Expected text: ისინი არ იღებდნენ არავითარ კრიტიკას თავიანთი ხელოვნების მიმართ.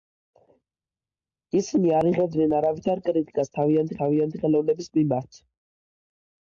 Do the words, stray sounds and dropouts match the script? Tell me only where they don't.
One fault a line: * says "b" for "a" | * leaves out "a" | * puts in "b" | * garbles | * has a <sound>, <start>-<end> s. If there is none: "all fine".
* puts in "თავიანთი"